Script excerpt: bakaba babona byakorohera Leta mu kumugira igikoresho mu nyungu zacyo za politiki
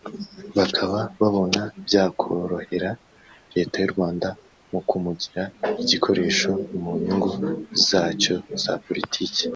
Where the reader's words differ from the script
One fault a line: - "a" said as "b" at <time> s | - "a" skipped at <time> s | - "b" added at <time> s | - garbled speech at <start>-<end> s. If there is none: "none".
- "y'u Rwanda" added at 3.8 s